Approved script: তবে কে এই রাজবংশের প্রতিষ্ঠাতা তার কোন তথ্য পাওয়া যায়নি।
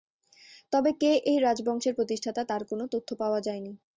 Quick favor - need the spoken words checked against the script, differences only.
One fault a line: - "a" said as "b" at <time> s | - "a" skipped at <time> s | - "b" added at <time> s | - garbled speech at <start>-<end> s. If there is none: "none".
none